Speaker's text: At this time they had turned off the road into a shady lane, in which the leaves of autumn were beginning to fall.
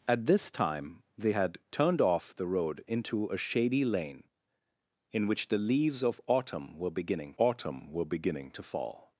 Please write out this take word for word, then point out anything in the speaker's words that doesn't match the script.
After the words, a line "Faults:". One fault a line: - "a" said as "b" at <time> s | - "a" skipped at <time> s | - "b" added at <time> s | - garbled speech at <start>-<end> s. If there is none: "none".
At this time they had turned off the road into a shady lane, in which the leaves of autumn were beginning autumn were beginning to fall.
Faults:
- "autumn were beginning" added at 7.4 s